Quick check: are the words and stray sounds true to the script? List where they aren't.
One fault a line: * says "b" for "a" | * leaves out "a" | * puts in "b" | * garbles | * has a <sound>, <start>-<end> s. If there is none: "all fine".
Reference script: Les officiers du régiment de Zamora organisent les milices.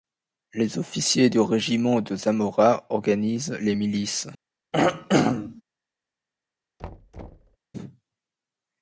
* has a throat clearing, 4.7-5.6 s
* has a thud, 6.8-7.6 s